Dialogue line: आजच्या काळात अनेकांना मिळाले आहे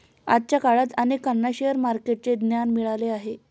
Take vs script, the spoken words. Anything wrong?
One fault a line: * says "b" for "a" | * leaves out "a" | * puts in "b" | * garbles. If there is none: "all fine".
* puts in "शेअर मार्केटचे ज्ञान"